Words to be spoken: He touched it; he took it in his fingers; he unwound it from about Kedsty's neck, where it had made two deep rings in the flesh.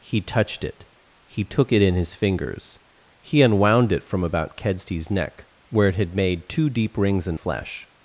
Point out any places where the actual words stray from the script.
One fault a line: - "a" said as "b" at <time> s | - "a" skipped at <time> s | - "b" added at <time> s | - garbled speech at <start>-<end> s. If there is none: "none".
- "the" skipped at 7.3 s